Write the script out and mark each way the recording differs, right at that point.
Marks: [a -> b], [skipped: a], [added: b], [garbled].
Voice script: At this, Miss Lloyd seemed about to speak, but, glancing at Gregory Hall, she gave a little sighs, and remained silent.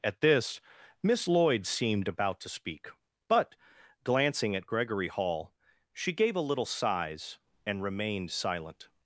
At this, Miss Lloyd seemed about to speak, but, glancing at Gregory Hall, she gave a little sighs, and remained silent.